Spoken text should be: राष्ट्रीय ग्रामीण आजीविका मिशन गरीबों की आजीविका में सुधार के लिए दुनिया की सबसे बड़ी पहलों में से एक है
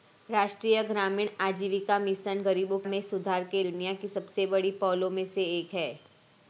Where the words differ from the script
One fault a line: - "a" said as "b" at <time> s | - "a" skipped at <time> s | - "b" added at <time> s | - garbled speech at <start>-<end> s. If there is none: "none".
- "की आजीविका" skipped at 2.8 s
- "लिए" skipped at 3.6 s